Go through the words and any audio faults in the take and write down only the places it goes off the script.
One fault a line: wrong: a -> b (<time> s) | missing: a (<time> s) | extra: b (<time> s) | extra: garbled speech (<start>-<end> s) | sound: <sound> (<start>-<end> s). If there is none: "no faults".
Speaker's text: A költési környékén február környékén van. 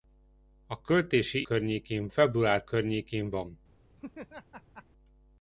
sound: laugh (4.0-4.8 s)